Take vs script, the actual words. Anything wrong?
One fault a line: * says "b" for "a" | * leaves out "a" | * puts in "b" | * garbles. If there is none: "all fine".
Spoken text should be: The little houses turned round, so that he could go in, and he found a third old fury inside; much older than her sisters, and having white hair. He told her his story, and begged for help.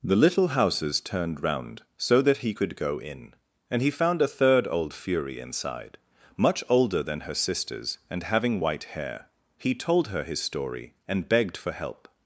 all fine